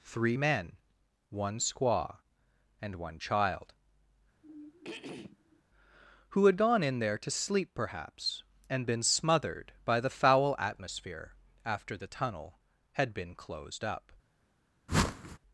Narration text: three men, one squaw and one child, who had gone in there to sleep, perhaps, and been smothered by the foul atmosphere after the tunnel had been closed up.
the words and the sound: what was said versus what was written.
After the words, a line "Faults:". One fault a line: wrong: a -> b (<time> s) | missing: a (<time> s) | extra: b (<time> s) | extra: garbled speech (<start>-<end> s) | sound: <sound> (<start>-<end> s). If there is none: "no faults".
three men, one squaw and one child, who had gone in there to sleep, perhaps, and been smothered by the foul atmosphere after the tunnel had been closed up.
Faults:
sound: throat clearing (4.4-5.6 s)
sound: whoosh (14.9-15.4 s)